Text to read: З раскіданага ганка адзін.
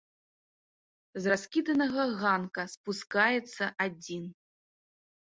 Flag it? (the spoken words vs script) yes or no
yes